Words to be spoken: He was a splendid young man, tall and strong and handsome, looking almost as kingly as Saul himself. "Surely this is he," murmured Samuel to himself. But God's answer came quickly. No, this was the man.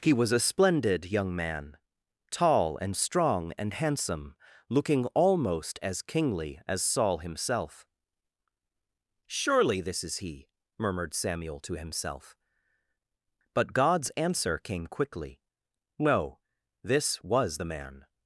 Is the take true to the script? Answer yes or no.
yes